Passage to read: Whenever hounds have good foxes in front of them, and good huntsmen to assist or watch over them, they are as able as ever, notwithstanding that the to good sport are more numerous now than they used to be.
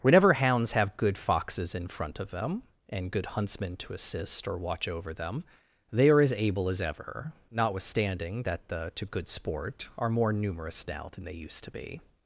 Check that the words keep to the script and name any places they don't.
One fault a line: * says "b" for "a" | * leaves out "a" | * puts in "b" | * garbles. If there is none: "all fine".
all fine